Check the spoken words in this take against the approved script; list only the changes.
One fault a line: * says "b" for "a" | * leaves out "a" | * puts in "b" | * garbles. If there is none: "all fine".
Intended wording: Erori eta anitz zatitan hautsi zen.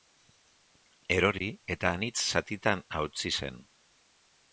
all fine